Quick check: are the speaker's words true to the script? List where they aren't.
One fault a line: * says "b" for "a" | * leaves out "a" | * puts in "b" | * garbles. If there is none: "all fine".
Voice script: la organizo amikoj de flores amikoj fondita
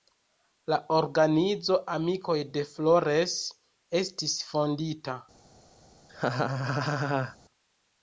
* says "estis" for "amikoj"